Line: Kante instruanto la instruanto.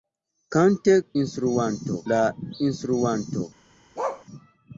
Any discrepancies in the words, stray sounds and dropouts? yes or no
yes